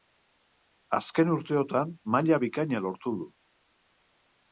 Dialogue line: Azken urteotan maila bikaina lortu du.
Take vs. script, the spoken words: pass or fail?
pass